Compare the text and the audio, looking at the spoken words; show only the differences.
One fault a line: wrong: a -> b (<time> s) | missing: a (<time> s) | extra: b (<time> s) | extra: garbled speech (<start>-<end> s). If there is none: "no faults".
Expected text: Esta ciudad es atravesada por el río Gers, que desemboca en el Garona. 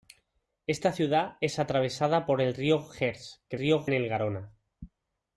wrong: desemboca -> río (3.6 s)